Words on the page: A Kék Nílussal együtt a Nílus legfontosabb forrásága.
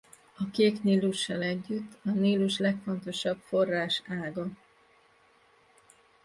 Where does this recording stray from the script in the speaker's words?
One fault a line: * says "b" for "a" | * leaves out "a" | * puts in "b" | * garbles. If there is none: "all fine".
all fine